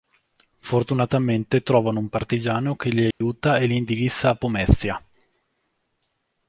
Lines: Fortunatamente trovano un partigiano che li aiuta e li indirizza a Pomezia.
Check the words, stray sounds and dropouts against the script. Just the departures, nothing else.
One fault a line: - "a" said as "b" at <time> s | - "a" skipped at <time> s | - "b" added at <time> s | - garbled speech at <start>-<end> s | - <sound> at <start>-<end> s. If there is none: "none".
- dropout at 3.1-3.2 s